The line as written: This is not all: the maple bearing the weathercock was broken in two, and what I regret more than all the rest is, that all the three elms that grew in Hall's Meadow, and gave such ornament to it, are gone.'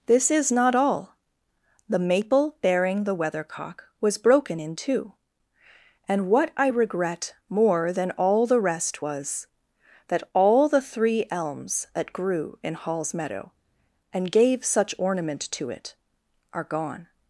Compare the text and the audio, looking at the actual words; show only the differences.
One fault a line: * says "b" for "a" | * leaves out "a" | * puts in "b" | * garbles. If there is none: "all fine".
* says "was" for "is"